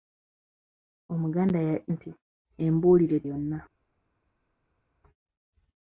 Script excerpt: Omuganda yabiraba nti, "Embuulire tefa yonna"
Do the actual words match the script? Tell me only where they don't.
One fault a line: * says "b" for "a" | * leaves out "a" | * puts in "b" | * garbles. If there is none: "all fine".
* leaves out "yabiraba"
* leaves out "tefa"